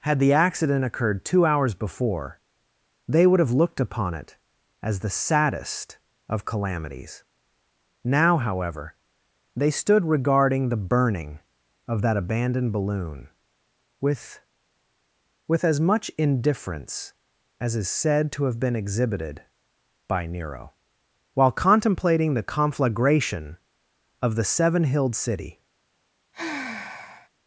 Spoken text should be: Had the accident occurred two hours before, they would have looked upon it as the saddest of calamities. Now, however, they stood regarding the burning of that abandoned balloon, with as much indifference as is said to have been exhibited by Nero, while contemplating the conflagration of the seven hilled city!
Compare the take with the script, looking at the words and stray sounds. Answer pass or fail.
fail